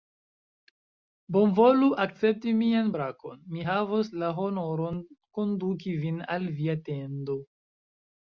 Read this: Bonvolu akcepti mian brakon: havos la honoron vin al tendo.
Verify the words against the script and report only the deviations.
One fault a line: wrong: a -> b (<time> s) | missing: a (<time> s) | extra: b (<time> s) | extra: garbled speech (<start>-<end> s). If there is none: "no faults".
extra: mi (3.5 s)
extra: konduki (5.4 s)
extra: via (6.6 s)